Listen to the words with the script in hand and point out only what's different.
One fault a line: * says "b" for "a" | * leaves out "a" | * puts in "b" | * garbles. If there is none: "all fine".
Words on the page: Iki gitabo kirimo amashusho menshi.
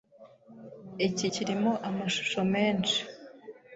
* leaves out "gitabo"